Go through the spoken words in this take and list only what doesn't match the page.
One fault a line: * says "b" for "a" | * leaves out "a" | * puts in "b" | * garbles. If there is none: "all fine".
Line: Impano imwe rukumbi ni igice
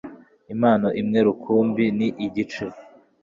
all fine